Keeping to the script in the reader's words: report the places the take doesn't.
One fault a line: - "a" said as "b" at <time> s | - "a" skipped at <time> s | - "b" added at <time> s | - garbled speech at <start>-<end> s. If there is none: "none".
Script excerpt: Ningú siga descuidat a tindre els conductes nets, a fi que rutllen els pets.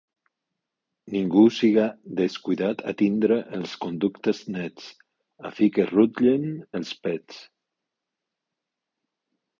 none